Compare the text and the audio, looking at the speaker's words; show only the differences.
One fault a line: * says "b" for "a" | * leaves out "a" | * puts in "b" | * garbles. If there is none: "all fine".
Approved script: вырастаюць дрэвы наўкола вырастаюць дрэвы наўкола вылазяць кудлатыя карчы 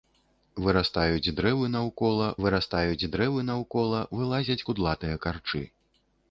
all fine